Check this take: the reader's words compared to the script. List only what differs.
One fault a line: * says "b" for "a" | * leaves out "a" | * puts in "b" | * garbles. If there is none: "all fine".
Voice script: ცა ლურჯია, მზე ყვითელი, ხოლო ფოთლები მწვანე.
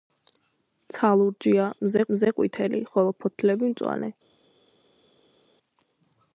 * puts in "მზე"